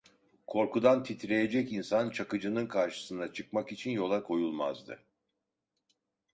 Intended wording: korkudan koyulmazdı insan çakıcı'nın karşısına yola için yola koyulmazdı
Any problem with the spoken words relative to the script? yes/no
yes